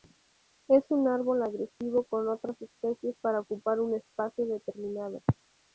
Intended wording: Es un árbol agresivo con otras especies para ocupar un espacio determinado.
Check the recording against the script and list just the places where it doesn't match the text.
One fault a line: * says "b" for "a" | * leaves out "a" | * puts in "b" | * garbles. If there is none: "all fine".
all fine